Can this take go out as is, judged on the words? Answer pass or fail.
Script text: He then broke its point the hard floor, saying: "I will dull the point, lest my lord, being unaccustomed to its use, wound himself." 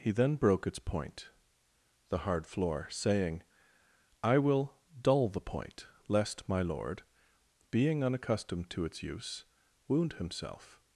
pass